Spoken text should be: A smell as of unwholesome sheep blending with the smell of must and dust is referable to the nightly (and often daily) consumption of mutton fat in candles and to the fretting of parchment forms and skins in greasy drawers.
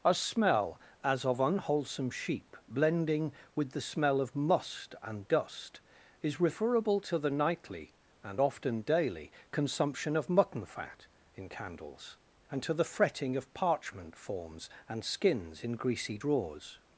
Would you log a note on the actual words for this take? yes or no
no